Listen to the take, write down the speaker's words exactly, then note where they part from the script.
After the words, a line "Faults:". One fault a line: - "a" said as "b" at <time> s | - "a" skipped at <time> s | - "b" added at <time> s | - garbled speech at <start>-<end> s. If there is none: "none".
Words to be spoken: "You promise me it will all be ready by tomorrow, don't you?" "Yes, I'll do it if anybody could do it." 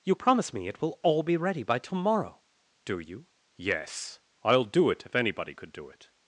"You promise me it will all be ready by tomorrow, do you?" "Yes, I'll do it if anybody could do it."
Faults:
- "don't" said as "do" at 2.9 s